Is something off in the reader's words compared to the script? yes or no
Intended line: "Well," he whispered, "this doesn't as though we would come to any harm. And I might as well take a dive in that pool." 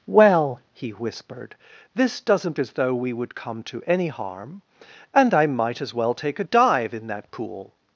no